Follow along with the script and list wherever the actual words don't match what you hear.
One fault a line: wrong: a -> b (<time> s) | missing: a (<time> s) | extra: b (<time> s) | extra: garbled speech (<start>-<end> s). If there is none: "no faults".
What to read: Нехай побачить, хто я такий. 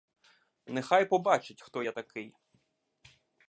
no faults